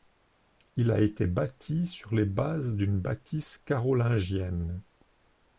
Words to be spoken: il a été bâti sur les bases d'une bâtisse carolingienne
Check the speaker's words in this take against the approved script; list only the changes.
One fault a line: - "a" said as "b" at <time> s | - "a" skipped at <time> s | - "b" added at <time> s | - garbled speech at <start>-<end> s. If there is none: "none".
none